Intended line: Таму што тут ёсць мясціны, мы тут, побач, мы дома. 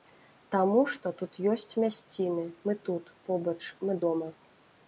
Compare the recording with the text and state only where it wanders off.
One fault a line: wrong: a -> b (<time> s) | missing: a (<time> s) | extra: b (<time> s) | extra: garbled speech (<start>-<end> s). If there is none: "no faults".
no faults